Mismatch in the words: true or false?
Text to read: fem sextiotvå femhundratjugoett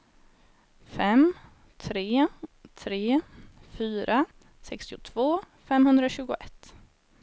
true